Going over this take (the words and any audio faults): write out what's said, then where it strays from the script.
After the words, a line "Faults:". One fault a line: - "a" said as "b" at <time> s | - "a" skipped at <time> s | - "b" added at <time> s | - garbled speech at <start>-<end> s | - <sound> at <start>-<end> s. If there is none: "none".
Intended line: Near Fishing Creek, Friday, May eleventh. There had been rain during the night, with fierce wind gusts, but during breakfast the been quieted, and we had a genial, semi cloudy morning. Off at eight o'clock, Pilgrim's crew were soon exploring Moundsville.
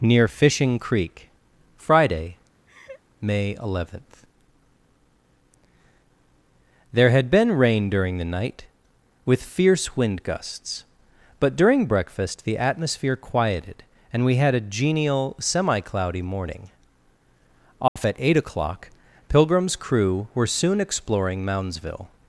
Near Fishing Creek, Friday, May eleventh. There had been rain during the night, with fierce wind gusts, but during breakfast the atmosphere quieted, and we had a genial, semi cloudy morning. Off at eight o'clock, Pilgrim's crew were soon exploring Moundsville.
Faults:
- laugh at 2.7-3.0 s
- "been" said as "atmosphere" at 12.6 s
- dropout at 17.9-18.0 s